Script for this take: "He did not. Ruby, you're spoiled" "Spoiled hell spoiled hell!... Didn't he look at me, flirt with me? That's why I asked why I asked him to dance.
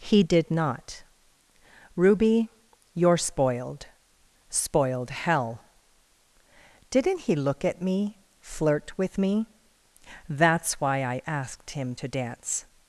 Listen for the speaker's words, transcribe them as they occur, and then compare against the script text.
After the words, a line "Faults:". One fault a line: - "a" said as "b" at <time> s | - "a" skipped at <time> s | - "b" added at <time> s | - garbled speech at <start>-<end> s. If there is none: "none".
"He did not. Ruby, you're spoiled" "Spoiled hell!... Didn't he look at me, flirt with me? That's why I asked him to dance.
Faults:
- "spoiled hell" skipped at 5.6 s
- "why I asked" skipped at 11.7 s